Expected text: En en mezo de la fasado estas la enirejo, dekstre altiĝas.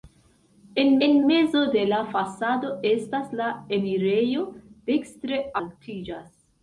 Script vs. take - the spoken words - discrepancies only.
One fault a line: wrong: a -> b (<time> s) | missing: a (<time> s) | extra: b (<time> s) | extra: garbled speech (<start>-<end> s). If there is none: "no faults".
no faults